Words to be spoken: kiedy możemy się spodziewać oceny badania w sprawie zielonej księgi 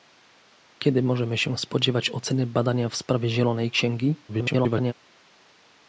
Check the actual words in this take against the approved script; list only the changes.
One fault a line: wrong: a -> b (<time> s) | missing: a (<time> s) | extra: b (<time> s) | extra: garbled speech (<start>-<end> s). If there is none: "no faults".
extra: garbled speech (4.3-4.9 s)